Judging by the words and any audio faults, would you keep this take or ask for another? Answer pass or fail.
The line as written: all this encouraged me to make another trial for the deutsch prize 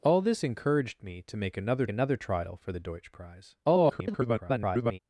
fail